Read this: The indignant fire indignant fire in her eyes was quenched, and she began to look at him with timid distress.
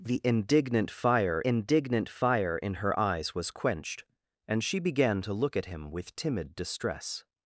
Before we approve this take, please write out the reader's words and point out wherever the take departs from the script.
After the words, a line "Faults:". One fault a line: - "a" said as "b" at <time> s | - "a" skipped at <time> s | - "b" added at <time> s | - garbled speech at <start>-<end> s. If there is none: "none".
The indignant fire indignant fire in her eyes was quenched, and she began to look at him with timid distress.
Faults:
none